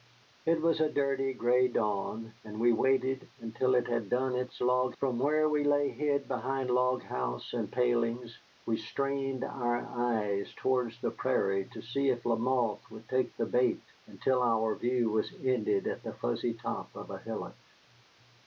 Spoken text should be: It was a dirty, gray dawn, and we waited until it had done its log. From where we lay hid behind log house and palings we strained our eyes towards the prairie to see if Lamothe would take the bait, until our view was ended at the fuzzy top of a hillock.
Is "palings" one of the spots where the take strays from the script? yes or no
no